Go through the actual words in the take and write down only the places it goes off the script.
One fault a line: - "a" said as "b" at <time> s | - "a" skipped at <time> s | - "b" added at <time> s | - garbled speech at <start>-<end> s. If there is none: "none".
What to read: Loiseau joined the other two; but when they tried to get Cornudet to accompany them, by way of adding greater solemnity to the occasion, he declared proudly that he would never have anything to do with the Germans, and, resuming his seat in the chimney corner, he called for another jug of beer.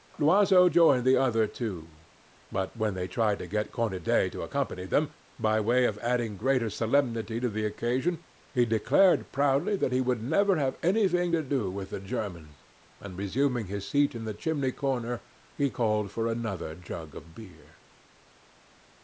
none